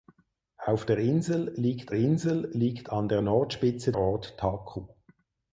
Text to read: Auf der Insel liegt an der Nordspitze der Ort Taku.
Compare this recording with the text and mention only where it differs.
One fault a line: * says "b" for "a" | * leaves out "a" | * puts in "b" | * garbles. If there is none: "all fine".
* puts in "Insel liegt"
* leaves out "der"